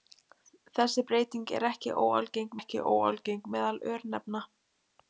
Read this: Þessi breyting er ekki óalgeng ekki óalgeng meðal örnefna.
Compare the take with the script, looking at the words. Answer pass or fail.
pass